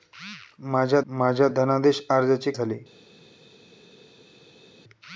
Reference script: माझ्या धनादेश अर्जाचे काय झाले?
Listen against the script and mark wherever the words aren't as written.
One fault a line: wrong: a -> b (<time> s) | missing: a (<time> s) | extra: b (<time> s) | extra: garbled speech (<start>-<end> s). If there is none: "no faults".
extra: माझ्या (1.1 s)
missing: काय (2.5 s)